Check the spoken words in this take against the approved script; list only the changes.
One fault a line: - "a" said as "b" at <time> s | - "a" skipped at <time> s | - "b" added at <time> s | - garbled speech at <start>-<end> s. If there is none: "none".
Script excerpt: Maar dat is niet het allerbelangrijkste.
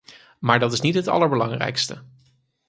none